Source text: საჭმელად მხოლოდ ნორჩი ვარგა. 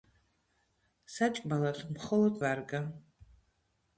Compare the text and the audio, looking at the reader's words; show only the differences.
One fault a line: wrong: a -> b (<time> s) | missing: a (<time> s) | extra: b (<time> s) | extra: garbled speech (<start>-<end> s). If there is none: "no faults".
missing: ნორჩი (2.4 s)